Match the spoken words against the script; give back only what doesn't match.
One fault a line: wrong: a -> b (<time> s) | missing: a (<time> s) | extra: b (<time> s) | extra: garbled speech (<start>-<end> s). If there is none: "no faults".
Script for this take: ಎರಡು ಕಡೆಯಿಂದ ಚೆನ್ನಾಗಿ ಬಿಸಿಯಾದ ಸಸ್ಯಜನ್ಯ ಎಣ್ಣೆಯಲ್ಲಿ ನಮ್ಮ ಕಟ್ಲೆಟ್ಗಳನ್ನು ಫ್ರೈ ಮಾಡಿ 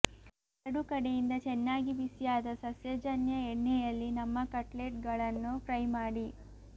no faults